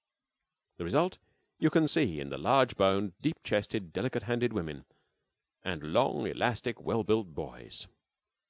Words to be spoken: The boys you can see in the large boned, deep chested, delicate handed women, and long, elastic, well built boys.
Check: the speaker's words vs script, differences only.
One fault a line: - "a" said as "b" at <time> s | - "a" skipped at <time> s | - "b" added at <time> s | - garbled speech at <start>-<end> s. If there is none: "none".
- "boys" said as "result" at 0.8 s